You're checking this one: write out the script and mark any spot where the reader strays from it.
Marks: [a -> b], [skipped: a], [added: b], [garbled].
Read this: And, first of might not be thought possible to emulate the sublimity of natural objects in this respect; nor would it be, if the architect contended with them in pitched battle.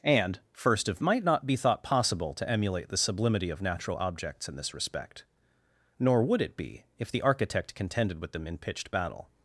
And, first of might not be thought possible to emulate the sublimity of natural objects in this respect; nor would it be, if the architect contended with them in pitched battle.